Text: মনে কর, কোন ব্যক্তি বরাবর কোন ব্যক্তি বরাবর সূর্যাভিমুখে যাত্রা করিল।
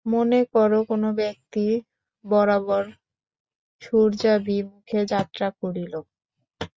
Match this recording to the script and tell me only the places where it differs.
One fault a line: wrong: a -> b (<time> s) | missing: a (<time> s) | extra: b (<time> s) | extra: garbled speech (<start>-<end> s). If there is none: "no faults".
missing: কোন ব্যক্তি বরাবর (2.8 s)